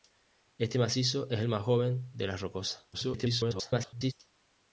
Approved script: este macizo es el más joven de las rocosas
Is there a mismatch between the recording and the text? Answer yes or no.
yes